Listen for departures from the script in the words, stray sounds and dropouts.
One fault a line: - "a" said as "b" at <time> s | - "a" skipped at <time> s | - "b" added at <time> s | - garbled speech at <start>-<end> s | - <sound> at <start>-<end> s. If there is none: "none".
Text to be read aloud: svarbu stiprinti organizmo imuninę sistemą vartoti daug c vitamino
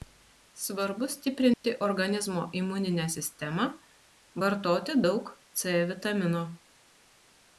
- dropout at 1.5-1.6 s